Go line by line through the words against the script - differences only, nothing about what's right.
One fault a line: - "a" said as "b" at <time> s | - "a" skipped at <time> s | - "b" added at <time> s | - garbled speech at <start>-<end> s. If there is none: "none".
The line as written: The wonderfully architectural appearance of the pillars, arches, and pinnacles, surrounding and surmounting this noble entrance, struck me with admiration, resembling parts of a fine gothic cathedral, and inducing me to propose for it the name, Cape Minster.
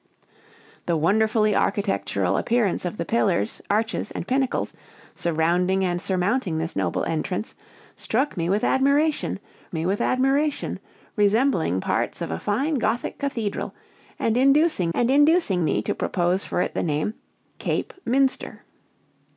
- "me with admiration" added at 9.7 s
- "and inducing" added at 14.9 s